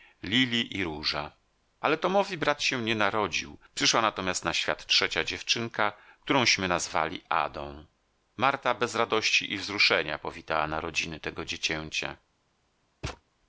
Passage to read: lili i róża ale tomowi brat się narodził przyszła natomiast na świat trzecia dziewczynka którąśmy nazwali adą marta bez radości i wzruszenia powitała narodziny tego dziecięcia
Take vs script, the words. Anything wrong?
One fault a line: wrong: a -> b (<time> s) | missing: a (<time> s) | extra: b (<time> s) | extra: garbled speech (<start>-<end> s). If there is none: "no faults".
extra: nie (2.8 s)